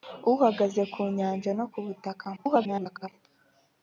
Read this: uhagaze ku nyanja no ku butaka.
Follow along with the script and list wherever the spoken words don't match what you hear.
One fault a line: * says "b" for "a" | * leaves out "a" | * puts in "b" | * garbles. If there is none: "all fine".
* garbles